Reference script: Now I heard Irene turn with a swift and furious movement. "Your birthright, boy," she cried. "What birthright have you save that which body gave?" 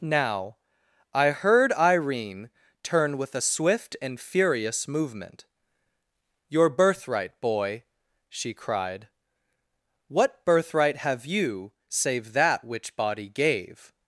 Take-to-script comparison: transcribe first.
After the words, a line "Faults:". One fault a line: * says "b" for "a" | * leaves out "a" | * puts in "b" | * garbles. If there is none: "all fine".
Now I heard Irene turn with a swift and furious movement. "Your birthright, boy," she cried. "What birthright have you save that which body gave?"
Faults:
all fine